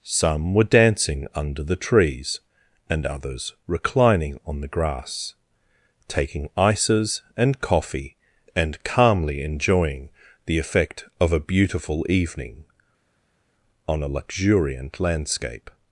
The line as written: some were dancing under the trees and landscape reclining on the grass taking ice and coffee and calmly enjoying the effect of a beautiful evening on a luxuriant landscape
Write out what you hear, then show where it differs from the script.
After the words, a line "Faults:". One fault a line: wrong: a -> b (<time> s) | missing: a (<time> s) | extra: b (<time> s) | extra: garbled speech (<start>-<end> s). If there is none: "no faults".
some were dancing under the trees and others reclining on the grass taking ices and coffee and calmly enjoying the effect of a beautiful evening on a luxuriant landscape
Faults:
wrong: landscape -> others (3.0 s)
wrong: ice -> ices (6.6 s)